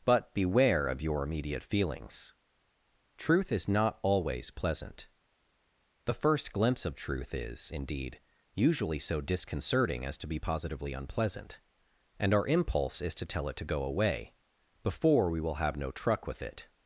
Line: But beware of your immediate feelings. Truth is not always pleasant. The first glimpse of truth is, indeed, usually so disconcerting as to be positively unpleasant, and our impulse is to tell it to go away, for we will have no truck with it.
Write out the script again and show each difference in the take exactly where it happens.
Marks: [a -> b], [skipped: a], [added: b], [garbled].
But beware of your immediate feelings. Truth is not always pleasant. The first glimpse of truth is, indeed, usually so disconcerting as to be positively unpleasant, and our impulse is to tell it to go away, [for -> before] we will have no truck with it.